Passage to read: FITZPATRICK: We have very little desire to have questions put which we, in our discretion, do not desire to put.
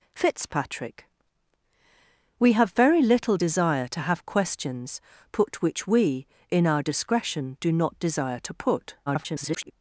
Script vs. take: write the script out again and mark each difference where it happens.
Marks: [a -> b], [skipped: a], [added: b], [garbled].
FITZPATRICK: We have very little desire to have questions put which we, in our discretion, do not desire to put. [garbled]